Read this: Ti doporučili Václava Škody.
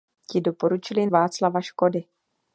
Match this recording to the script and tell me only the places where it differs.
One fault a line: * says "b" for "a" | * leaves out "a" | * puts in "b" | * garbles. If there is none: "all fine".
all fine